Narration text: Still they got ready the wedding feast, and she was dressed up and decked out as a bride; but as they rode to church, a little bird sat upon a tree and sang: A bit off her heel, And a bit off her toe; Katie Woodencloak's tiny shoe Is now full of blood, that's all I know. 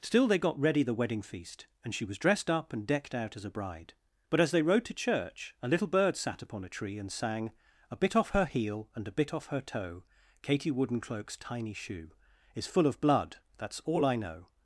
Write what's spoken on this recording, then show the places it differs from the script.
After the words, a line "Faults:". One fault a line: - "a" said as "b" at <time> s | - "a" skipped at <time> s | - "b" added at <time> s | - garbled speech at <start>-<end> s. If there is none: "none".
Still they got ready the wedding feast, and she was dressed up and decked out as a bride; but as they rode to church, a little bird sat upon a tree and sang: A bit off her heel, And a bit off her toe; Katie Woodencloak's tiny shoe Is full of blood, that's all I know.
Faults:
- "now" skipped at 12.7 s